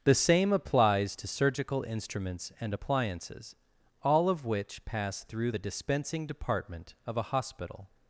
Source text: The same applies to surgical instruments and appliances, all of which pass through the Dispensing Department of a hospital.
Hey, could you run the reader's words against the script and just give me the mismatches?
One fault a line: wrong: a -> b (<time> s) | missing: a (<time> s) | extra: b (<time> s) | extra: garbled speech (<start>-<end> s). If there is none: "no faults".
no faults